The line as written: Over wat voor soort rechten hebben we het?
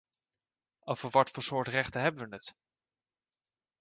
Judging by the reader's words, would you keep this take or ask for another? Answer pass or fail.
pass